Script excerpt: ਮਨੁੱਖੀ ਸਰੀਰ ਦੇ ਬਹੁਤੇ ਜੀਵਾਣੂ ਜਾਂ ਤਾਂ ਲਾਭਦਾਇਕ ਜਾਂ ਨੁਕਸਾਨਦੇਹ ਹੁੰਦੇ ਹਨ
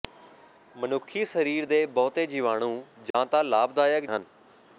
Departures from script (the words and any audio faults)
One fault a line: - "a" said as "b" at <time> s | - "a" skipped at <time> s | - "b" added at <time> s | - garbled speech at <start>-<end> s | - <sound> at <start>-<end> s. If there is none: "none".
- dropout at 3.1-3.1 s
- "ਜਾਂ ਨੁਕਸਾਨਦੇਹ ਹੁੰਦੇ" skipped at 4.0 s